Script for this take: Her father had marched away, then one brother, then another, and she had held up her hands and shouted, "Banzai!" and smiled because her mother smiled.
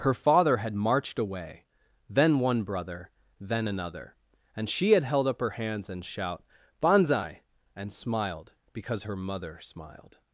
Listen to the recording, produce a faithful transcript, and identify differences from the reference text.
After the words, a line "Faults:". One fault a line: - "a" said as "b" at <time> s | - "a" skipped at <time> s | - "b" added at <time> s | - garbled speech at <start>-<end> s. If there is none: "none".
Her father had marched away, then one brother, then another, and she had held up her hands and shout, "Banzai!" and smiled because her mother smiled.
Faults:
- "shouted" said as "shout" at 6.1 s